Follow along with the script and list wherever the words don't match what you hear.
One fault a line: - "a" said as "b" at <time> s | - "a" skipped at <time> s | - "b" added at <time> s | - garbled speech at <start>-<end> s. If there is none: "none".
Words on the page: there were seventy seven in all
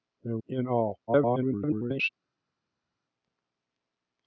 - "were seventy seven" skipped at 0.3 s
- garbled speech at 1.1-2.1 s